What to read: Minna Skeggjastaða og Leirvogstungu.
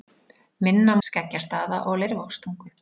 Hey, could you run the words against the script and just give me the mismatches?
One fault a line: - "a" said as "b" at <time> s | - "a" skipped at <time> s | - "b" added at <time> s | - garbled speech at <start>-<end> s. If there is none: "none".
none